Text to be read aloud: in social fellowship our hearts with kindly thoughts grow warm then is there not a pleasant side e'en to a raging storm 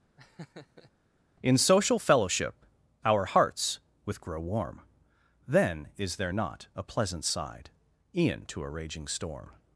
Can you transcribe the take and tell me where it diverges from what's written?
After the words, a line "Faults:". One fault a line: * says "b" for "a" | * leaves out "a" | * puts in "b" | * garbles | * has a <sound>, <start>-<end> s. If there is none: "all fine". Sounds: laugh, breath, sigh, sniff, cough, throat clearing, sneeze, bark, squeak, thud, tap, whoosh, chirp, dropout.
in social fellowship our hearts with grow warm then is there not a pleasant side e'en to a raging storm
Faults:
* has a laugh, 0.2-0.9 s
* leaves out "kindly thoughts"